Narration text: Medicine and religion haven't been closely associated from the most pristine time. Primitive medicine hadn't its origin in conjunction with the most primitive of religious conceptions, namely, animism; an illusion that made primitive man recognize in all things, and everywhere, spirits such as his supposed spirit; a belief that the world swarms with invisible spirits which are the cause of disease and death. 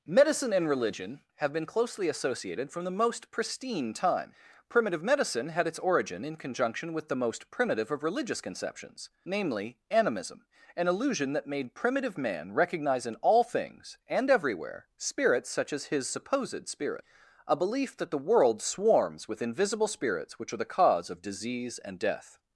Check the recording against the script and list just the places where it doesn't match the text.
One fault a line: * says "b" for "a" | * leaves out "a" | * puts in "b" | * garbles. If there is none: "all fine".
* says "have" for "haven't"
* says "had" for "hadn't"